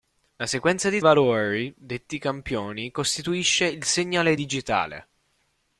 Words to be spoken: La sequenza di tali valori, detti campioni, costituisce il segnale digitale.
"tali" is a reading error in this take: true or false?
true